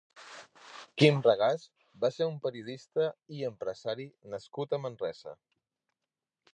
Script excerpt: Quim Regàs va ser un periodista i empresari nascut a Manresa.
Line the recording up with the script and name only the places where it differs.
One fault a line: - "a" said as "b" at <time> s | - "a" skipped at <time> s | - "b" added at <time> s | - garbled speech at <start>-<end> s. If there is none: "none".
none